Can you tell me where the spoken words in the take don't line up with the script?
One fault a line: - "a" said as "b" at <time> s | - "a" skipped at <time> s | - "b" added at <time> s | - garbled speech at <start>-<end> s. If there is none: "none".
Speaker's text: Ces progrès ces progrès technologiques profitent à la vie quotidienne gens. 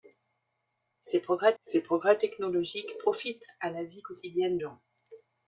none